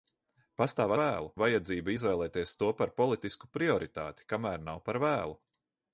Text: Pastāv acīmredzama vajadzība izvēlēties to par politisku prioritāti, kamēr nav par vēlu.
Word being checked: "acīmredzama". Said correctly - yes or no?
no